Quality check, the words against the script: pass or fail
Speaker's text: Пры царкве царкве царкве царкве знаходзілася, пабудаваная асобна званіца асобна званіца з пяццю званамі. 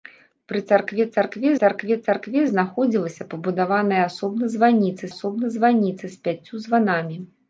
pass